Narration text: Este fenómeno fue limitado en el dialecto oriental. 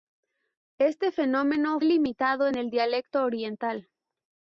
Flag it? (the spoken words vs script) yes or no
yes